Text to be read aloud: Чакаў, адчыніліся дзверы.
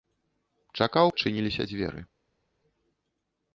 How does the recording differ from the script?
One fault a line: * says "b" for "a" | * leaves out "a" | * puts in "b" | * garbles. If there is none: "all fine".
all fine